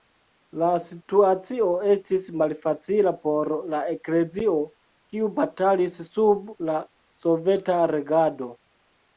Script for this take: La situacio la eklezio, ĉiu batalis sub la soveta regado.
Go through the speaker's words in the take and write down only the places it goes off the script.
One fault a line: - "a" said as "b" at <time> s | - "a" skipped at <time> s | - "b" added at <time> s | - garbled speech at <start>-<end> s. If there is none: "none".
- "estis malfacila por" added at 1.9 s
- "ĉiu" said as "kiu" at 5.1 s